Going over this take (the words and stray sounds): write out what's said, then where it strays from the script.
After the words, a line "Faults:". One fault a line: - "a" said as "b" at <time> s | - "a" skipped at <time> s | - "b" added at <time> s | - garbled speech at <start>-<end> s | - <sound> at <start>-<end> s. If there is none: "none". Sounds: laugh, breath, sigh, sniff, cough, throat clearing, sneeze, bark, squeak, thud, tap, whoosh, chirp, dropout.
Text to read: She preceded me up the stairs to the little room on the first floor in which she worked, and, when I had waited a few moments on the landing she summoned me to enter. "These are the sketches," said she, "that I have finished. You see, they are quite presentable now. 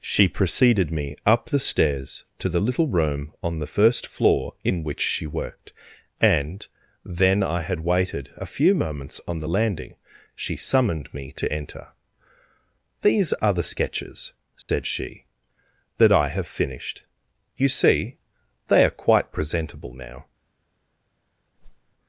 She preceded me up the stairs to the little room on the first floor in which she worked, and, then I had waited a few moments on the landing she summoned me to enter. "These are the sketches," said she, "that I have finished. You see, they are quite presentable now.
Faults:
- "when" said as "then" at 7.0 s
- dropout at 14.6-14.7 s
- whoosh at 21.6-21.9 s